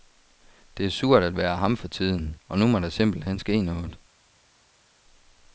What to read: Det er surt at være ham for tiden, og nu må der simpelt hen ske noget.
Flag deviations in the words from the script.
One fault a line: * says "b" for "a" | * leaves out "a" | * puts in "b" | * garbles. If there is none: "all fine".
all fine